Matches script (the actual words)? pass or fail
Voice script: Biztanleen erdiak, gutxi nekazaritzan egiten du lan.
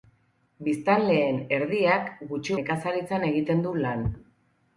pass